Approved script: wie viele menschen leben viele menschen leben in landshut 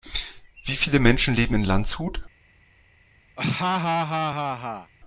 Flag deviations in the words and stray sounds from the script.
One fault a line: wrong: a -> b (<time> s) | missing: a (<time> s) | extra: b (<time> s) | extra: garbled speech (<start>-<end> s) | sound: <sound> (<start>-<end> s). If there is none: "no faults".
missing: viele menschen leben (1.6 s)
sound: laugh (3.4-4.9 s)